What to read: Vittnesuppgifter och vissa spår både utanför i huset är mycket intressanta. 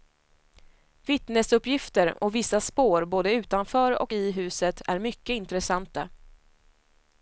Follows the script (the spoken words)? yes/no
no